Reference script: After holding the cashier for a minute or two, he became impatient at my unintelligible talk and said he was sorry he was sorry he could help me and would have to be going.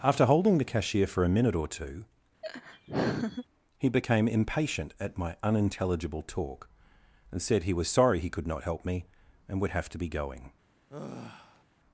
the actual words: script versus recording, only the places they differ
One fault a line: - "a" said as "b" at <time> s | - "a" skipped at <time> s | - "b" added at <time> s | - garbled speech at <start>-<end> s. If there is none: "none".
- "was sorry he could" said as "could not" at 8.3 s